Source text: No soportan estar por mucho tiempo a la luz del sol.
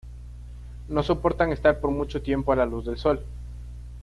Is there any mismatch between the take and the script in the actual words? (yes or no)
no